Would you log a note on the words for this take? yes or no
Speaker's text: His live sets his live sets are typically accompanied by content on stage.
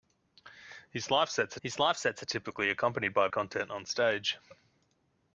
no